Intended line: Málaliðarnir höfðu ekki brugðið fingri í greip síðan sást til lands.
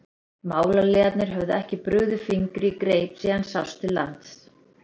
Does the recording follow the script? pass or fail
pass